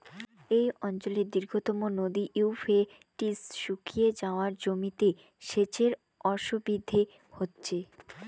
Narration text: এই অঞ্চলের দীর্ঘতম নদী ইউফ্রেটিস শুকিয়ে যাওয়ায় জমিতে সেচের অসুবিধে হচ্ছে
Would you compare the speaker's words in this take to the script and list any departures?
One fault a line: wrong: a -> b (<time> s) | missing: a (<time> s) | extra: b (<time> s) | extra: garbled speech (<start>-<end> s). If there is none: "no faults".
no faults